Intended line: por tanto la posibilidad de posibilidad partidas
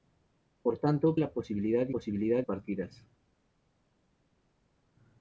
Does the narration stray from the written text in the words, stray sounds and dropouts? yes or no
no